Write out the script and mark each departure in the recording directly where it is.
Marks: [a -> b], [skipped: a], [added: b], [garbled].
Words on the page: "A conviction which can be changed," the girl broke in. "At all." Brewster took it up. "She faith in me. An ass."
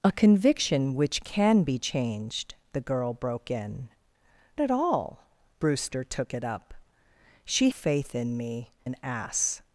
"A conviction which can be changed," the girl broke in. "At all." Brewster took it up. "She faith in me. An ass."